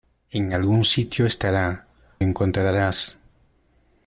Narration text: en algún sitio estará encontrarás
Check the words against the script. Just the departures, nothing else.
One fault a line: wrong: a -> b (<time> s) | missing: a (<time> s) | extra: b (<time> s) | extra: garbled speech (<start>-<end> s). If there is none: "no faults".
no faults